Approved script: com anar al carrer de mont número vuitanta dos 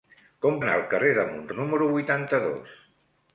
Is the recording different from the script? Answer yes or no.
no